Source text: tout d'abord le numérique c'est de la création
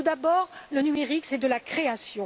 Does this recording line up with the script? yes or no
yes